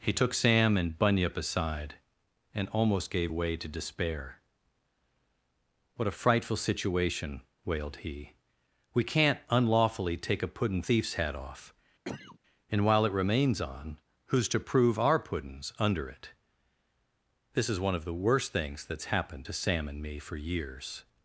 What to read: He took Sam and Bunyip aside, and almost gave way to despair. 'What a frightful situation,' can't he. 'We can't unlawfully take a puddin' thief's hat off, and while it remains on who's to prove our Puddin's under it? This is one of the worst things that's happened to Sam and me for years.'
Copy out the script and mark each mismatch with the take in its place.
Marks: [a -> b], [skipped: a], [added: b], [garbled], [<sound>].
He took Sam and Bunyip aside, and almost gave way to despair. 'What a frightful situation,' [can't -> wailed] he. 'We can't unlawfully take a puddin' thief's hat off, [cough] and while it remains on who's to prove our Puddin's under it? This is one of the worst things that's happened to Sam and me for years.'